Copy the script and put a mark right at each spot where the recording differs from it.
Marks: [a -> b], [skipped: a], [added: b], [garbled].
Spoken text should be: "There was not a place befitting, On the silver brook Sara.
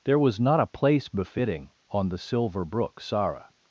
"There was not a place befitting, On the silver brook Sara.